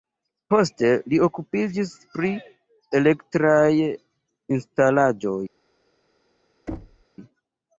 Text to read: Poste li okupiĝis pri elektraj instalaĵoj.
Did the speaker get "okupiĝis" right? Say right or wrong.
right